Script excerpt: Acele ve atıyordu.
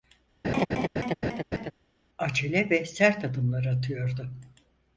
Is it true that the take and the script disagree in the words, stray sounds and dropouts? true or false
true